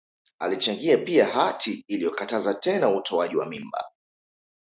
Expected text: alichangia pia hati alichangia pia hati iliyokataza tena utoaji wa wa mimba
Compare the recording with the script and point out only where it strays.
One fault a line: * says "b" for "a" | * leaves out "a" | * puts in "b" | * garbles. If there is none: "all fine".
* leaves out "alichangia pia hati"
* leaves out "wa"